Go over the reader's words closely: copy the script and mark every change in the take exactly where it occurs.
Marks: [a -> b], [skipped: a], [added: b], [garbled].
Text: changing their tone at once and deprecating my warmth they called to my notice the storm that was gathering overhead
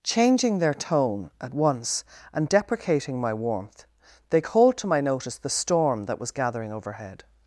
changing their tone at once and deprecating my warmth they called to my notice the storm that was gathering overhead